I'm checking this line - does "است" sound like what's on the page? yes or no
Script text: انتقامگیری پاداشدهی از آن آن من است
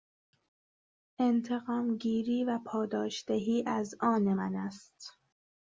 yes